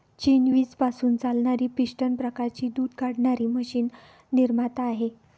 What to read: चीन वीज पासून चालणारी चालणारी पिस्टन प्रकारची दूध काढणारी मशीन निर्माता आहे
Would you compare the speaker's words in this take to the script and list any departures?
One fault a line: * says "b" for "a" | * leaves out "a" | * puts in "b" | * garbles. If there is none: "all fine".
* leaves out "चालणारी"